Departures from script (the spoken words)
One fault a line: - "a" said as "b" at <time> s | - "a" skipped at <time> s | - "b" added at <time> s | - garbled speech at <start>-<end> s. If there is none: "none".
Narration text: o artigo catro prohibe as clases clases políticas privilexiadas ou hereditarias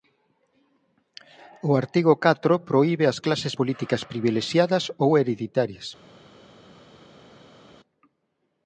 - "clases" skipped at 3.5 s